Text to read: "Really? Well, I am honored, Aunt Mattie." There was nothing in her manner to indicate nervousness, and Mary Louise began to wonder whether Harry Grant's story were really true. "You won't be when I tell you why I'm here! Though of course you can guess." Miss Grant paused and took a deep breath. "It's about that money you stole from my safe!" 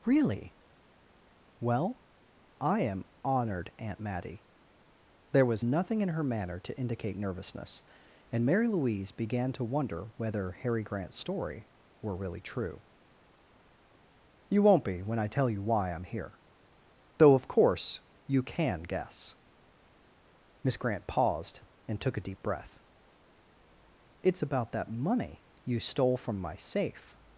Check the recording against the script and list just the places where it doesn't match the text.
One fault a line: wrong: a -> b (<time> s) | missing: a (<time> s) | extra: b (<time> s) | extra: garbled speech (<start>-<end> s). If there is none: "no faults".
no faults